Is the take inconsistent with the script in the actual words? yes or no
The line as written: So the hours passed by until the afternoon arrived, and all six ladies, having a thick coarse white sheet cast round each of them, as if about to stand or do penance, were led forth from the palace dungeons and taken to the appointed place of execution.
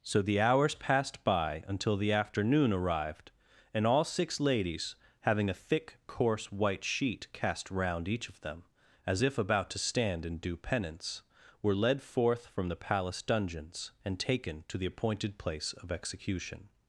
yes